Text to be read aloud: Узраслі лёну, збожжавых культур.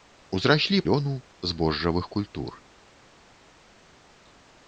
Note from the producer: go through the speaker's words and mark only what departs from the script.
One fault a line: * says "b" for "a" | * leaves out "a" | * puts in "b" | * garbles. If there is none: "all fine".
all fine